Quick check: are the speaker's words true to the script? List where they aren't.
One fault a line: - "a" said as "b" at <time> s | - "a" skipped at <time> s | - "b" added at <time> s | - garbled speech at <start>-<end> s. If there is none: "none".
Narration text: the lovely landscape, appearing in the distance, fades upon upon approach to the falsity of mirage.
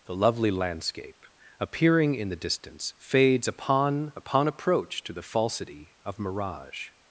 none